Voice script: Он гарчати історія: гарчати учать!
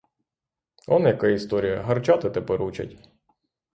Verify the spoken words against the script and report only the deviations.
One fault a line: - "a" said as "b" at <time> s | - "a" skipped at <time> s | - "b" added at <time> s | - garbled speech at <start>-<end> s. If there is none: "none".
- "гарчати" said as "яка" at 1.1 s
- "тепер" added at 2.3 s